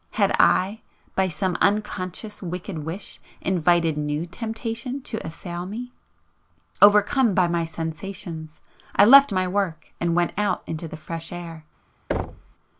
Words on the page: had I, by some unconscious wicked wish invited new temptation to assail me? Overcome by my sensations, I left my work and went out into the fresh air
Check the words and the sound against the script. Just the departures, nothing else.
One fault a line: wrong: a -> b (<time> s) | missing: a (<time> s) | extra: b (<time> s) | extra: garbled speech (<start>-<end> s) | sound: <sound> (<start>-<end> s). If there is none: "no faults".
sound: thud (12.1-12.5 s)